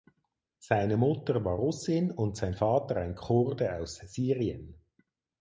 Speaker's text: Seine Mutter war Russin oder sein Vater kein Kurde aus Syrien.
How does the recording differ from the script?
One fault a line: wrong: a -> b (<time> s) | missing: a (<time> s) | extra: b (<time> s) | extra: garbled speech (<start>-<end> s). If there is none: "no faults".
wrong: oder -> und (2.1 s)
wrong: kein -> ein (3.0 s)